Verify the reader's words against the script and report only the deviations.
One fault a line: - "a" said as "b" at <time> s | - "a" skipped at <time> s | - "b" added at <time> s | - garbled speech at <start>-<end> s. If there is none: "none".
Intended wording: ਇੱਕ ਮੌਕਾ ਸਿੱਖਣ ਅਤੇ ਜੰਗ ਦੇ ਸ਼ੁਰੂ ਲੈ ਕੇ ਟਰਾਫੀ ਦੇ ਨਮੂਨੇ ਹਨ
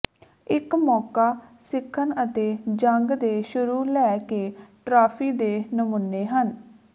none